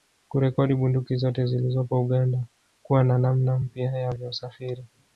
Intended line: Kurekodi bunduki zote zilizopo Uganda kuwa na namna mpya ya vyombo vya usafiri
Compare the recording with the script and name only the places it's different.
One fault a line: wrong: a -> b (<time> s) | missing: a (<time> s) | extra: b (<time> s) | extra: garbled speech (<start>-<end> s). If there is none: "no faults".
missing: vyombo (4.1 s)